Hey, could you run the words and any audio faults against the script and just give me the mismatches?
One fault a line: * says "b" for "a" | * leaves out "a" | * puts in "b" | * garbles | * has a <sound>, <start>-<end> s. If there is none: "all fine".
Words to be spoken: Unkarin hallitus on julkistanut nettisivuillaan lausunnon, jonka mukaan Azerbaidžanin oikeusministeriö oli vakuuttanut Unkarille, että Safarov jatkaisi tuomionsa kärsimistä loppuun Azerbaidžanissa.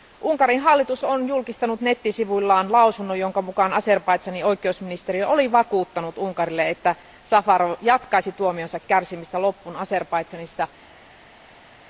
all fine